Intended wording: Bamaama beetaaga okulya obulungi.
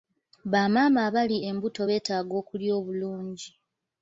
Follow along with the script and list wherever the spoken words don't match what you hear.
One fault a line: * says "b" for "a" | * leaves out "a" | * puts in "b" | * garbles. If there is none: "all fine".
* puts in "abali embuto"